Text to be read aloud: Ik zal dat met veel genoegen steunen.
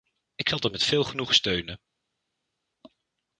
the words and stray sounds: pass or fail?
pass